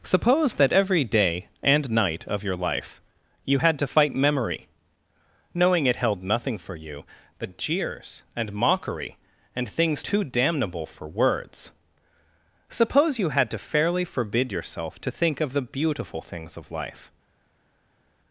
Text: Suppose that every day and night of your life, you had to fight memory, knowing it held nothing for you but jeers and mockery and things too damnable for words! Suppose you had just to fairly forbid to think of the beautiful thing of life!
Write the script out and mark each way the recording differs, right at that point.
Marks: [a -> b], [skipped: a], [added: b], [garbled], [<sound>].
Suppose that every day and night of your life, you had to fight memory, knowing it held nothing for you but jeers and mockery and things too damnable for words! Suppose you had [skipped: just] to fairly forbid [added: yourself] to think of the beautiful [thing -> things] of life!